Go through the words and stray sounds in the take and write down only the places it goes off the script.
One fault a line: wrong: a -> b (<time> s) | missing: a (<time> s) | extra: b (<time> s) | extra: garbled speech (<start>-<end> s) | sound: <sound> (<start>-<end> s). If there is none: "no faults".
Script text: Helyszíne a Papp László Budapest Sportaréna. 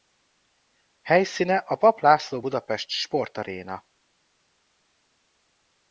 no faults